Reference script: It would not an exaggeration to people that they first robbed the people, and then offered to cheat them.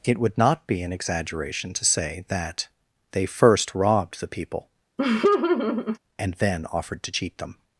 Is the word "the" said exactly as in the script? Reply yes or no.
yes